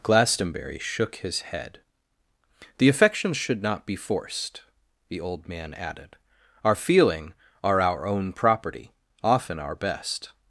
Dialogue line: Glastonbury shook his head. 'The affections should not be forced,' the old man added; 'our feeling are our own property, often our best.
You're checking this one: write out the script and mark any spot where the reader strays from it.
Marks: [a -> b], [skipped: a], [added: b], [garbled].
Glastonbury shook his head. 'The affections should not be forced,' the old man added; 'our feeling are our own property, often our best.